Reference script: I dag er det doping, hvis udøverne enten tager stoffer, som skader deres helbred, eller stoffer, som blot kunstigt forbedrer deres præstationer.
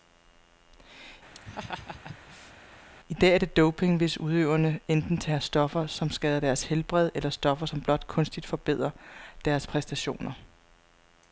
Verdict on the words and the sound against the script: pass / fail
fail